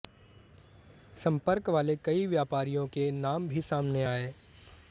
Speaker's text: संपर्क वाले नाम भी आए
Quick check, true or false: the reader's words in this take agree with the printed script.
false